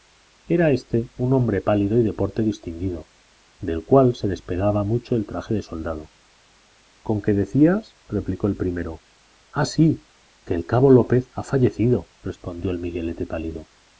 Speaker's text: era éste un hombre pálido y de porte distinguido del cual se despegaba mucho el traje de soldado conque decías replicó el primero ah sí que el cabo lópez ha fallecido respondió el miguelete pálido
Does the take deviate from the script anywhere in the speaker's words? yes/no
no